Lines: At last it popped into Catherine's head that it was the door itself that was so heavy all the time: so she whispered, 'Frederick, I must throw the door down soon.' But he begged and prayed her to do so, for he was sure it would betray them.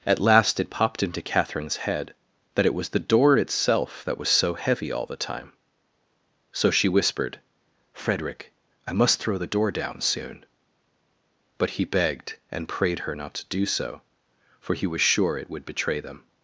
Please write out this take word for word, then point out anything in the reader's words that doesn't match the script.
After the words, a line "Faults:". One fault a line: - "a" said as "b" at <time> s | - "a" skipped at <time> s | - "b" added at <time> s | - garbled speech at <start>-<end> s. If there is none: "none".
At last it popped into Catherine's head that it was the door itself that was so heavy all the time: so she whispered, 'Frederick, I must throw the door down soon.' But he begged and prayed her not to do so, for he was sure it would betray them.
Faults:
- "not" added at 13.1 s